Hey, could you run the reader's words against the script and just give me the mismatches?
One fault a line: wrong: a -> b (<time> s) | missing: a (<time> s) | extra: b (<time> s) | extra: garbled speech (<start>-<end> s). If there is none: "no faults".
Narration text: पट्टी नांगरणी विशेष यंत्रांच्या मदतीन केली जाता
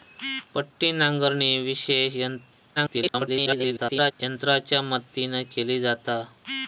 extra: garbled speech (2.8-4.1 s)